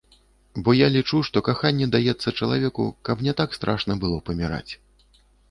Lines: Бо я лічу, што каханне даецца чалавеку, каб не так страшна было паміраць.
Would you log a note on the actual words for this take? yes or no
no